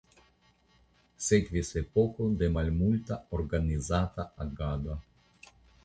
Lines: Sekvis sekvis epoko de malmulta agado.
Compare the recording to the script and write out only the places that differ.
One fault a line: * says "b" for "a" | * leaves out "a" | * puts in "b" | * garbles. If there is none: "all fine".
* leaves out "sekvis"
* puts in "organizata"